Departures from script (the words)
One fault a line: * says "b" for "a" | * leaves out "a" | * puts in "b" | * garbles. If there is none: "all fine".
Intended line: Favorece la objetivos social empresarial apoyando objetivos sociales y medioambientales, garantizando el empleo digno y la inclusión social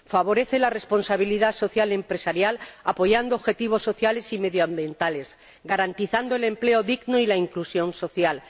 * says "responsabilidad" for "objetivos"